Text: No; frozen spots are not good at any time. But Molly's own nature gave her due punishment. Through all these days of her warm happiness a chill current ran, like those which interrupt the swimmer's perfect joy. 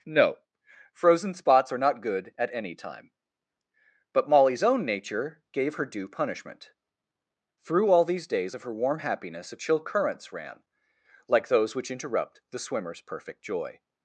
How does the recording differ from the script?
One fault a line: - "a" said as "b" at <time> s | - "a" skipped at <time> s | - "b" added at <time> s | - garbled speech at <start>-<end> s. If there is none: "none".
- "current" said as "currents" at 9.8 s